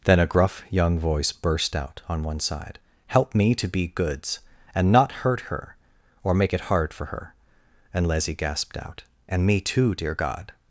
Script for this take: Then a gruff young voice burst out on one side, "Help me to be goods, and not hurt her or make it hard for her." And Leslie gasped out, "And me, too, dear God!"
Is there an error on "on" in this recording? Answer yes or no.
no